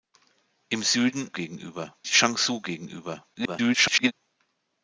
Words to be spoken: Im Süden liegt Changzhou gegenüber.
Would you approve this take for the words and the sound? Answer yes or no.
no